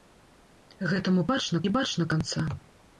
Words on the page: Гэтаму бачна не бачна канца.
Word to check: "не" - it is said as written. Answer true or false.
true